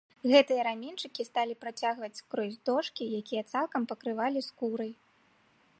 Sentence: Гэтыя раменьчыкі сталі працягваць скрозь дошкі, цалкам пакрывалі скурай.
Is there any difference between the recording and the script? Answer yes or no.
yes